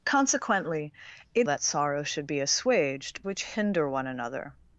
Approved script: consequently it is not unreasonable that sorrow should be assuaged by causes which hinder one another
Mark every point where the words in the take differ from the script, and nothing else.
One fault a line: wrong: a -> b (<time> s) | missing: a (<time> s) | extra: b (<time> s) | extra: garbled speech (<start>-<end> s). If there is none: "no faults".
missing: is not unreasonable (1.5 s)
missing: by causes (3.2 s)